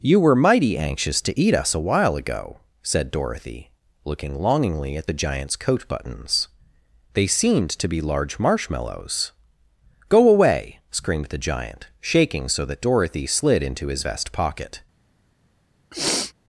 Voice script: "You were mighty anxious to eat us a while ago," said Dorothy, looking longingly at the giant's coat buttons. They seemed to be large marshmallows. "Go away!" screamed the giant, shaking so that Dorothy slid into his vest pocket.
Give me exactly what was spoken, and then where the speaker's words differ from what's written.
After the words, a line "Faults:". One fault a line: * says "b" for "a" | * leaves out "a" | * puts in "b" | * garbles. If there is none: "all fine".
"You were mighty anxious to eat us a while ago," said Dorothy, looking longingly at the giant's coat buttons. They seemed to be large marshmallows. "Go away!" screamed the giant, shaking so that Dorothy slid into his vest pocket.
Faults:
all fine